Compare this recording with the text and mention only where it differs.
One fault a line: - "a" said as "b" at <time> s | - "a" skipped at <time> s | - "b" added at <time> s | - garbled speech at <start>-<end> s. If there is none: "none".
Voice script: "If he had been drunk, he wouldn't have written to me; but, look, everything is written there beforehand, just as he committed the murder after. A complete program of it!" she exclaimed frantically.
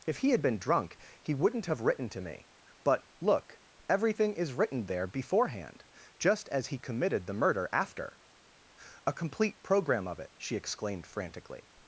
none